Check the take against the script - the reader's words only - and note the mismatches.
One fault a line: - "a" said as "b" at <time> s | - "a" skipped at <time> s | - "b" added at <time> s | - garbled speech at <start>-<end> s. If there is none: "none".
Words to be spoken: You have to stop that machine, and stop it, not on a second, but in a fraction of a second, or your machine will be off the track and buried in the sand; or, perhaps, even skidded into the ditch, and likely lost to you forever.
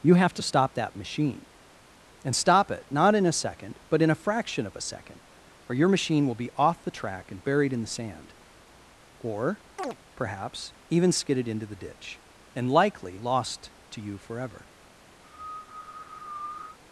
- "on" said as "in" at 3.1 s